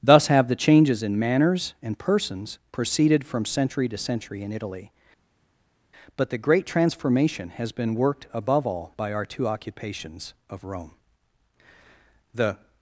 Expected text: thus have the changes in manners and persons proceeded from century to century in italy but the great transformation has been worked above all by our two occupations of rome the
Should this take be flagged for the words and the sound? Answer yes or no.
no